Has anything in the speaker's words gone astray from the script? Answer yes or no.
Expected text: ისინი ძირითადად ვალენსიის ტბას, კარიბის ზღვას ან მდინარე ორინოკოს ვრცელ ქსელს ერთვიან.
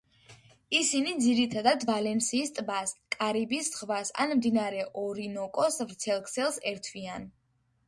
no